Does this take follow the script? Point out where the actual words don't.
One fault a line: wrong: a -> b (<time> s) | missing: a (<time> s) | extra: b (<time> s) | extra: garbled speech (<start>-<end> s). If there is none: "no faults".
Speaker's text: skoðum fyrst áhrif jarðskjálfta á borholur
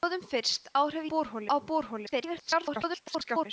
wrong: jarðskjálfta -> borholur (1.1 s)
extra: garbled speech (2.1-3.5 s)